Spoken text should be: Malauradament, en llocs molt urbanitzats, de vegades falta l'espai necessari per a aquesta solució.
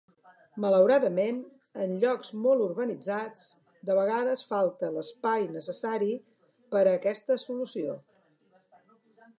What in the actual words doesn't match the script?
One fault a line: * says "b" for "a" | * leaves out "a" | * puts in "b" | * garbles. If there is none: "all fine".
all fine